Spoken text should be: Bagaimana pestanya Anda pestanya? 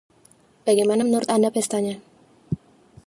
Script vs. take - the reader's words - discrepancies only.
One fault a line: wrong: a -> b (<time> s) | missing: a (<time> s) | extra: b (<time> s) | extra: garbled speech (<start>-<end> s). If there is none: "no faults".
wrong: pestanya -> menurut (1.0 s)